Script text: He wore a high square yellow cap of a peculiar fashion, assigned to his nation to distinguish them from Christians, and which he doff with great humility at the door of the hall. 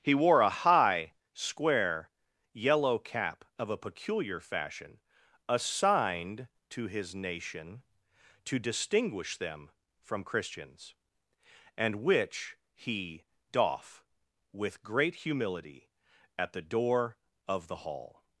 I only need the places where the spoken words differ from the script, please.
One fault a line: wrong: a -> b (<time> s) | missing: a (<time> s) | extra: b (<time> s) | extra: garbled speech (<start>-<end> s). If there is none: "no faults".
no faults